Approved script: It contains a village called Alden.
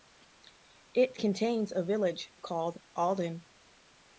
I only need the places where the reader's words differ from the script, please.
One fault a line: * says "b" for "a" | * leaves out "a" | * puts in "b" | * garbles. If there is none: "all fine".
all fine